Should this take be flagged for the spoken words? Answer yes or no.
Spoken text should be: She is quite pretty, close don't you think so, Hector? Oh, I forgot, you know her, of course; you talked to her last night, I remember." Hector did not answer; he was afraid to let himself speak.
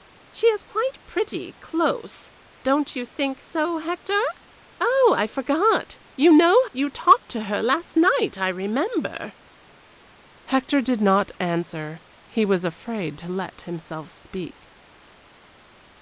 yes